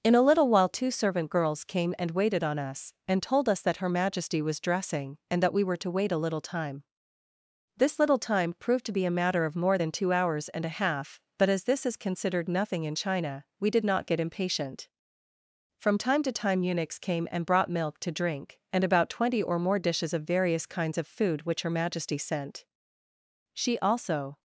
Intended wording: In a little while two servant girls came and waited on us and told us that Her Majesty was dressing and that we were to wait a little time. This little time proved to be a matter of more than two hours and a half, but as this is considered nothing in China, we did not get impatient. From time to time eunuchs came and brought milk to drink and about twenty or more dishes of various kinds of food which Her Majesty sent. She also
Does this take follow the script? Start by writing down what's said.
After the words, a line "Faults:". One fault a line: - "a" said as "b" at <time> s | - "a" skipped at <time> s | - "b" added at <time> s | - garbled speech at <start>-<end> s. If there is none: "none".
In a little while two servant girls came and waited on us and told us that Her Majesty was dressing and that we were to wait a little time. This little time proved to be a matter of more than two hours and a half, but as this is considered nothing in China, we did not get impatient. From time to time eunuchs came and brought milk to drink and about twenty or more dishes of various kinds of food which Her Majesty sent. She also
Faults:
none